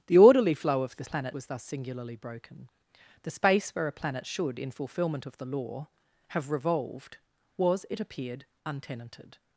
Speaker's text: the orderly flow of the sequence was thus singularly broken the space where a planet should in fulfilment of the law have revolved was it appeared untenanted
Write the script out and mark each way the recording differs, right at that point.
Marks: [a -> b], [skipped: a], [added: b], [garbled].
the orderly flow of the [sequence -> planet] was thus singularly broken the space where a planet should in fulfilment of the law have revolved was it appeared untenanted